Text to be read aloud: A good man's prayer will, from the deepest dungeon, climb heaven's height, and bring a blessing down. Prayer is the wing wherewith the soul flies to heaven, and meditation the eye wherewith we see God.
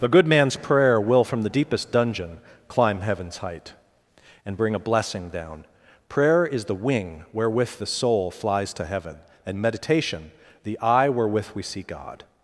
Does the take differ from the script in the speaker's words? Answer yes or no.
yes